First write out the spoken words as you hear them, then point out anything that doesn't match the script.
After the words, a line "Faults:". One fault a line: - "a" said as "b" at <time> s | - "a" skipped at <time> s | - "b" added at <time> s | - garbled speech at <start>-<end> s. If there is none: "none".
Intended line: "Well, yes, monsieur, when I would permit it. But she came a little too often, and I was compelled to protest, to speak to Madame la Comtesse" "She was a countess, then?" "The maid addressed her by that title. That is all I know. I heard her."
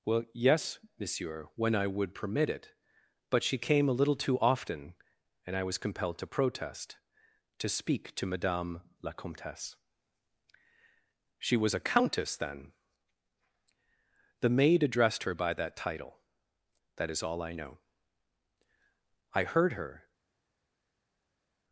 "Well, yes, monsieur, when I would permit it. But she came a little too often, and I was compelled to protest, to speak to Madame la Comtesse" "She was a countess, then?" "The maid addressed her by that title. That is all I know. I heard her."
Faults:
none